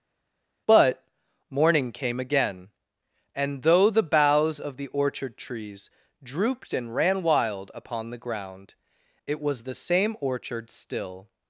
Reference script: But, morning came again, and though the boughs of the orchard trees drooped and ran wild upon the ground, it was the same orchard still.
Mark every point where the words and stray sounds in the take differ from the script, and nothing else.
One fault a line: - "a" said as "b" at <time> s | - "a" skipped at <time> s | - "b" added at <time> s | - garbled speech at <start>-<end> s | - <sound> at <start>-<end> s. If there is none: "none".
none